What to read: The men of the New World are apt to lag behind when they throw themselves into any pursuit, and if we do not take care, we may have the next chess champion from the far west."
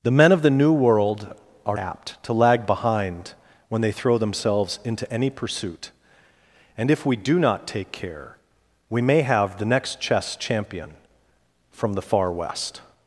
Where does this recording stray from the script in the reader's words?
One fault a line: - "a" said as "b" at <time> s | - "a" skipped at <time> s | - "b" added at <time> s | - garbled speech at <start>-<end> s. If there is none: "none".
none